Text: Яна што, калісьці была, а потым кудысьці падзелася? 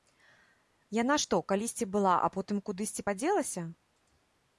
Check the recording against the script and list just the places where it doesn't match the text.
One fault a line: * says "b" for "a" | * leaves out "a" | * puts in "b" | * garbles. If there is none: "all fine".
all fine